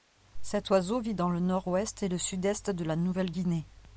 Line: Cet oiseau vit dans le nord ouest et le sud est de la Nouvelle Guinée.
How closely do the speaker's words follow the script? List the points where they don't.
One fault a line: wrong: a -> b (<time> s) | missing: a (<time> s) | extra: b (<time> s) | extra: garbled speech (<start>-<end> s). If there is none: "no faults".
no faults